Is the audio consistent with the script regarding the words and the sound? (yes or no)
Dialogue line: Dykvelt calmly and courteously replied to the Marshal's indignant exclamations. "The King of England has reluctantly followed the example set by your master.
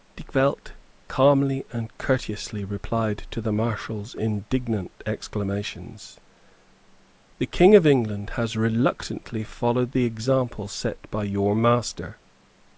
yes